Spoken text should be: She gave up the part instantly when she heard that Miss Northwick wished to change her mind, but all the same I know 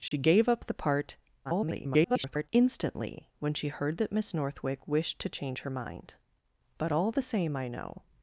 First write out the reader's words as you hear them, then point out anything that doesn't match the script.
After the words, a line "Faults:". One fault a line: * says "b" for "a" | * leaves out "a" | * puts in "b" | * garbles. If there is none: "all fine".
She gave up the part [garbled] instantly when she heard that Miss Northwick wished to change her mind, but all the same I know
Faults:
* garbles